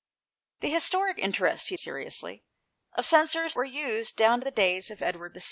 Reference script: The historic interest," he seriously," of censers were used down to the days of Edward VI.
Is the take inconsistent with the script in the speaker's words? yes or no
no